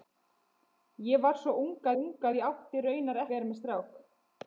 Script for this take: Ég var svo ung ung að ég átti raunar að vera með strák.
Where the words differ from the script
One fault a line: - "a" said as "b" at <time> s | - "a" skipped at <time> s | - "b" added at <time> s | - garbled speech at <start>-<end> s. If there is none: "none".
none